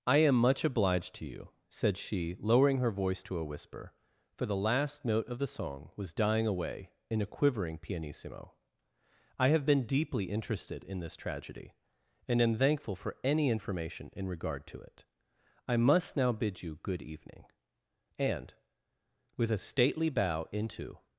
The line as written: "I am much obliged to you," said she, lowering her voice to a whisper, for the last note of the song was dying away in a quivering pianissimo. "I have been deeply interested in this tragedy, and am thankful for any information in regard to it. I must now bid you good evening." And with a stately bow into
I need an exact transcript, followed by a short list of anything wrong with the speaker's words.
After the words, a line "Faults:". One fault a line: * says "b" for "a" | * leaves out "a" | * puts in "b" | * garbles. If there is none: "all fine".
"I am much obliged to you," said she, lowering her voice to a whisper, for the last note of the song was dying away in a quivering pianissimo. "I have been deeply interested in this tragedy, and am thankful for any information in regard to it. I must now bid you good evening." And with a stately bow into
Faults:
all fine